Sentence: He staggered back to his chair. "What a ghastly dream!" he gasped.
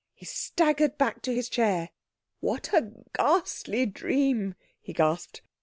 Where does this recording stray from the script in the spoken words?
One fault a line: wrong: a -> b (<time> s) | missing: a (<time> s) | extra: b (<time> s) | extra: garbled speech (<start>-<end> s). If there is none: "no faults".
no faults